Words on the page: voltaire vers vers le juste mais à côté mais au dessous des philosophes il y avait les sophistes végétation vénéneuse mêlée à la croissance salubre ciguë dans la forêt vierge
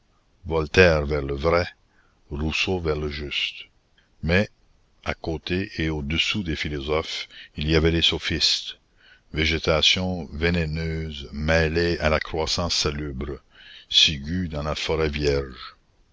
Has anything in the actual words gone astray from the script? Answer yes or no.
yes